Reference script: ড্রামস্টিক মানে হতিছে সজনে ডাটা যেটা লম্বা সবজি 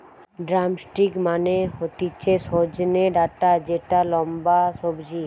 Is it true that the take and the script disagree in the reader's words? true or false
false